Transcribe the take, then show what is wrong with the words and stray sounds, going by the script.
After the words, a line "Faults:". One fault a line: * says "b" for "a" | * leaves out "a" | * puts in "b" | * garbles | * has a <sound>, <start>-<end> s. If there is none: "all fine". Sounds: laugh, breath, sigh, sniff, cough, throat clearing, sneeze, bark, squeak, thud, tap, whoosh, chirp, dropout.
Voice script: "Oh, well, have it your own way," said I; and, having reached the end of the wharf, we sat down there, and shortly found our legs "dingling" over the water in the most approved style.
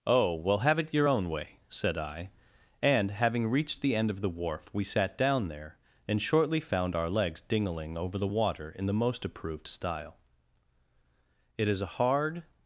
"Oh, well, have it your own way," said I; and, having reached the end of the wharf, we sat down there, and shortly found our legs "dingling" over the water in the most approved style. "It is a hard
Faults:
* puts in "It is a hard"